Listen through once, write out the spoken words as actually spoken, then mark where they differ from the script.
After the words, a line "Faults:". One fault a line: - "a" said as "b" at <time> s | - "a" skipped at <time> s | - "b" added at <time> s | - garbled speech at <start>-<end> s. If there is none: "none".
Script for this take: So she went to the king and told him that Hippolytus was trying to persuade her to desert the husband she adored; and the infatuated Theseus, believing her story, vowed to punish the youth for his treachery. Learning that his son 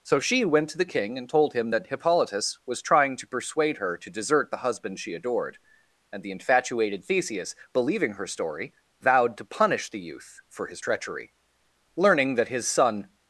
So she went to the king and told him that Hippolytus was trying to persuade her to desert the husband she adored; and the infatuated Theseus, believing her story, vowed to punish the youth for his treachery. Learning that his son
Faults:
none